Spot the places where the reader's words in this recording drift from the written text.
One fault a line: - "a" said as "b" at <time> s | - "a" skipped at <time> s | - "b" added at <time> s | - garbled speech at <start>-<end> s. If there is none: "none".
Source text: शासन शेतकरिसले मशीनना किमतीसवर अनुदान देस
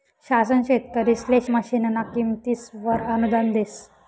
none